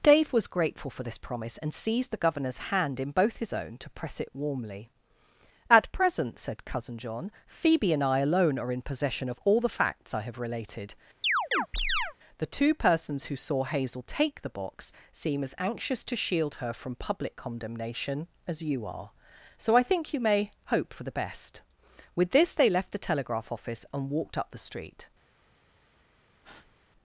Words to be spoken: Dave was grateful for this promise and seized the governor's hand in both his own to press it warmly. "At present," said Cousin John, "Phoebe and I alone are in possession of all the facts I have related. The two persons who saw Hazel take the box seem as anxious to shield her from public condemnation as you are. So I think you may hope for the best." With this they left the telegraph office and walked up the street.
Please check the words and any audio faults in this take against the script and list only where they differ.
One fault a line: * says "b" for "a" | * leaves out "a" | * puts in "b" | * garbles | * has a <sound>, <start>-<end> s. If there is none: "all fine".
* has a chirp, 11.2-12.2 s
* has a breath, 26.4-26.8 s